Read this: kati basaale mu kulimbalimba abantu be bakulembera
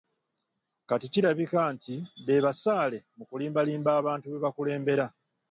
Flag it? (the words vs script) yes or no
yes